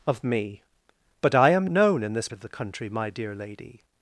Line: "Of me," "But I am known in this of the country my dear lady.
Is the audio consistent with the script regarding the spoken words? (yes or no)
yes